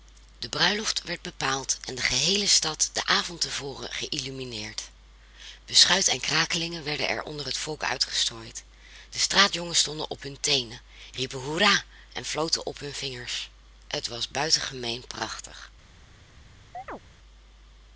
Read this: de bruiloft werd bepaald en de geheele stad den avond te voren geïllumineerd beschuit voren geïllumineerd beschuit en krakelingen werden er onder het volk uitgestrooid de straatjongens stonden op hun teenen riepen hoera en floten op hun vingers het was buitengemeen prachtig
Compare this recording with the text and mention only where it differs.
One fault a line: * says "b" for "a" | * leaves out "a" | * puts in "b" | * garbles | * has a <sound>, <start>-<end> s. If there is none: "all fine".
* leaves out "voren geïllumineerd beschuit"
* has a chirp, 16.7-17.0 s